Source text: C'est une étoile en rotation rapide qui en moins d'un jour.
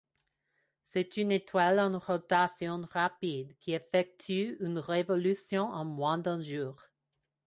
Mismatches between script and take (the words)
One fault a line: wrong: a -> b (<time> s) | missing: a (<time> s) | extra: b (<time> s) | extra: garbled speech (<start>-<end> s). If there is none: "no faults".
extra: effectue une révolution (3.7 s)